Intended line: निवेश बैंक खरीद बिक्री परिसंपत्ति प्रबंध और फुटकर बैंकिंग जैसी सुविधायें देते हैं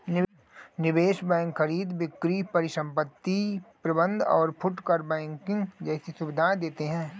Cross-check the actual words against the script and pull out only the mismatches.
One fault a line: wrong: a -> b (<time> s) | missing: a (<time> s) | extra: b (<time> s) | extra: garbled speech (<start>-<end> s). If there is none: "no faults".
no faults